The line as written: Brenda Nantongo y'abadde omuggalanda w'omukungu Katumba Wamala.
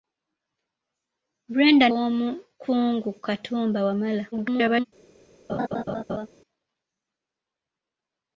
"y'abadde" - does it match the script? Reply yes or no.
no